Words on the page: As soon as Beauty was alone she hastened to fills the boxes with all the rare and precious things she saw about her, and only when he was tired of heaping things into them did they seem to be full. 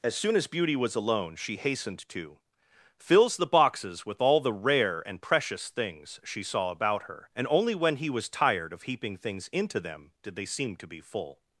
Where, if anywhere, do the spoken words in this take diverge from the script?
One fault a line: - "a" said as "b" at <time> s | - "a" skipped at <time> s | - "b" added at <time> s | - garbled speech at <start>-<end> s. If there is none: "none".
none